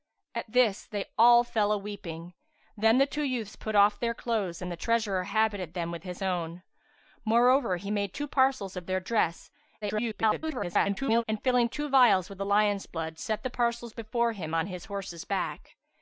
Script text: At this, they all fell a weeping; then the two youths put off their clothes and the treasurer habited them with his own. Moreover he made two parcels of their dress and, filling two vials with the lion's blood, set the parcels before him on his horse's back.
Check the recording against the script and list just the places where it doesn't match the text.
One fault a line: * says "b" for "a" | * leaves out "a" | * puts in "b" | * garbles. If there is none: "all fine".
* garbles